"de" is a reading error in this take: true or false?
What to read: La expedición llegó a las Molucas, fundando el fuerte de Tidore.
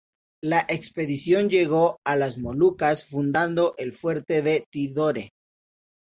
false